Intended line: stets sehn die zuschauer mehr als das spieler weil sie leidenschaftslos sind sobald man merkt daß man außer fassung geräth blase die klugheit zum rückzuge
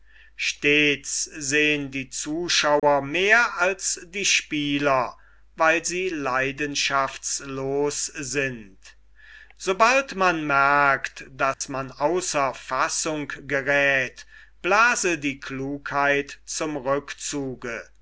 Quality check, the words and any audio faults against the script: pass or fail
fail